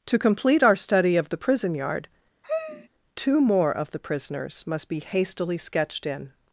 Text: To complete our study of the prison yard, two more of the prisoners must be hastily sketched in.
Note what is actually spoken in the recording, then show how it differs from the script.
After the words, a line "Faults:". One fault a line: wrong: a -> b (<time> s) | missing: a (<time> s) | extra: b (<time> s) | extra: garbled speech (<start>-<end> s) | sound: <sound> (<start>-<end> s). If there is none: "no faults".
To complete our study of the prison yard, two more of the prisoners must be hastily sketched in.
Faults:
sound: sigh (2.4-2.9 s)